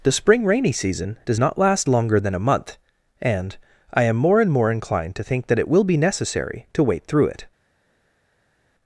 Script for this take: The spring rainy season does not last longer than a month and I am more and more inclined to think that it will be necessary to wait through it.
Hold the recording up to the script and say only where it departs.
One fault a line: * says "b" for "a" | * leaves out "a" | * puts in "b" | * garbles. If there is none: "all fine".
all fine